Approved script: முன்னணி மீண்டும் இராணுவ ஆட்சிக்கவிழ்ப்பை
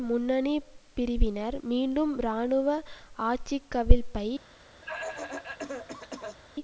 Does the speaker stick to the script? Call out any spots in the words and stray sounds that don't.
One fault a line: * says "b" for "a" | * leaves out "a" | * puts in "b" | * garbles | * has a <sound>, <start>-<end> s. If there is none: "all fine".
* puts in "பிரிவினர்"
* has a cough, 4.8-6.4 s